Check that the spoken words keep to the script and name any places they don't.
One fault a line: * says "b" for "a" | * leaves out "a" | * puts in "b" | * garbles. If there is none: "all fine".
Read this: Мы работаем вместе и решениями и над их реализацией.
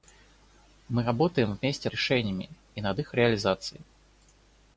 all fine